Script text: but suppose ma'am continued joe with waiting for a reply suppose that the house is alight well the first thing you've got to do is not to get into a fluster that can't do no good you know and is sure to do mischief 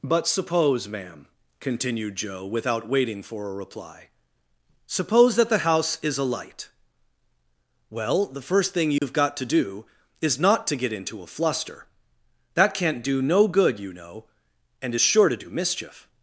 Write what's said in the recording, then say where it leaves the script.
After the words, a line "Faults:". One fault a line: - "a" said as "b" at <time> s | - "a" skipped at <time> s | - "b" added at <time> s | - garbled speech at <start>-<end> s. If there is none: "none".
but suppose ma'am continued joe without waiting for a reply suppose that the house is alight well the first thing you've got to do is not to get into a fluster that can't do no good you know and is sure to do mischief
Faults:
- "with" said as "without" at 2.4 s